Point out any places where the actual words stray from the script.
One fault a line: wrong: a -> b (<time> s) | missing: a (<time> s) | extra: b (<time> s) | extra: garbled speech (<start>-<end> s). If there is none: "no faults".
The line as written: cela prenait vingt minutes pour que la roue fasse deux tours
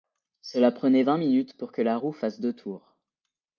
no faults